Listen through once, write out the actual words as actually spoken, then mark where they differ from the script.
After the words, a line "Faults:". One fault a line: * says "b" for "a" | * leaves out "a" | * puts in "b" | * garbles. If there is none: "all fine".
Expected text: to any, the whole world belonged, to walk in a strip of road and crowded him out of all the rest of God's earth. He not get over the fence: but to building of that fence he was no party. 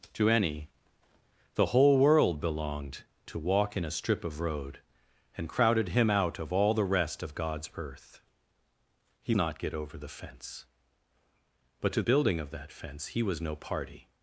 to any, the whole world belonged, to walk in a strip of road and crowded him out of all the rest of God's earth. He not get over the fence: but to building of that fence he was no party.
Faults:
all fine